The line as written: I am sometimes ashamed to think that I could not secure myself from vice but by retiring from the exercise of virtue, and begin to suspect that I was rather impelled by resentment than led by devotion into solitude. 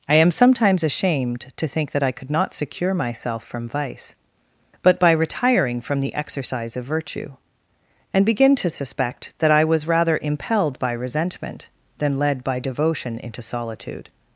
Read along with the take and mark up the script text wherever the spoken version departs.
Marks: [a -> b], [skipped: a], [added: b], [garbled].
I am sometimes ashamed to think that I could not secure myself from vice but by retiring from the exercise of virtue, and begin to suspect that I was rather impelled by resentment than led by devotion into solitude.